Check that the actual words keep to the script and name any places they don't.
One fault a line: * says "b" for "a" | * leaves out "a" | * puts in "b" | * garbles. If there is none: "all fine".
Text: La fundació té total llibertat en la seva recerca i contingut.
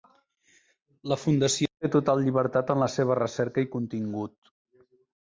all fine